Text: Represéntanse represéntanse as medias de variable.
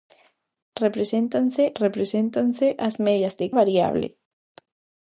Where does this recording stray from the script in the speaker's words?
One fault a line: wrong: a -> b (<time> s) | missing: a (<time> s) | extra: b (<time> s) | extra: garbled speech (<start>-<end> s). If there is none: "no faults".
no faults